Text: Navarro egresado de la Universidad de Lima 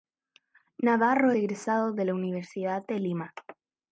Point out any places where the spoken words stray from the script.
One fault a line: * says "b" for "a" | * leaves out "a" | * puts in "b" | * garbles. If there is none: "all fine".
all fine